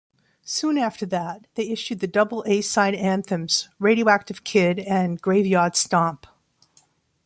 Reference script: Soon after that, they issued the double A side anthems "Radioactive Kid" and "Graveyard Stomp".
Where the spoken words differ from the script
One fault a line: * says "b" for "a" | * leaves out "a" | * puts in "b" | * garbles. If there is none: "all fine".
all fine